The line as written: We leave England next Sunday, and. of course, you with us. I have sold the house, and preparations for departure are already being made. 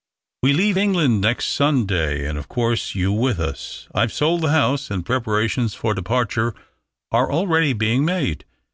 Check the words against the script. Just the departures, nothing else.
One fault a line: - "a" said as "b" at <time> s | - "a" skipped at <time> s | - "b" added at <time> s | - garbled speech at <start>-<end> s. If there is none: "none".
none